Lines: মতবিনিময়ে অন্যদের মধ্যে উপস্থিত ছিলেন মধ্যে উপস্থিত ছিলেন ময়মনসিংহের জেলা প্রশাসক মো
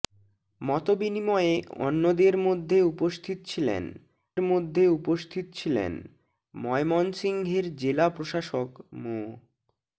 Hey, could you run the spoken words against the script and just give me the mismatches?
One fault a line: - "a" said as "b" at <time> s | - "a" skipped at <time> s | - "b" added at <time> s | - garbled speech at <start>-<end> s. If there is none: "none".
none